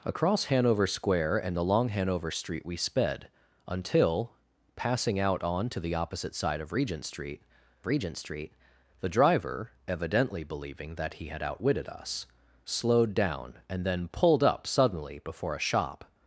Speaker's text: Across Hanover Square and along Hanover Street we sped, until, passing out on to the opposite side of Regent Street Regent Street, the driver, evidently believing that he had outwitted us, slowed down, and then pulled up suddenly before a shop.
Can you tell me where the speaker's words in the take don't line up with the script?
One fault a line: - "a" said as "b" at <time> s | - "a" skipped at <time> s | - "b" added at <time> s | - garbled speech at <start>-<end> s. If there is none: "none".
none